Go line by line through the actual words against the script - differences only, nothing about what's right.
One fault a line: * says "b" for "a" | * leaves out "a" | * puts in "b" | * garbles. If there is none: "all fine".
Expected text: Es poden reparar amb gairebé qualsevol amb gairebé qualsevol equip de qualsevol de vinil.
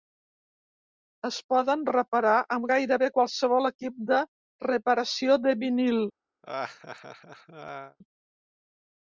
* leaves out "amb gairebé qualsevol"
* says "reparació" for "qualsevol"